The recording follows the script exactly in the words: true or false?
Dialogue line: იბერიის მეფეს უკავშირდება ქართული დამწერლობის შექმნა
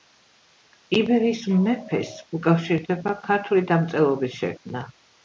true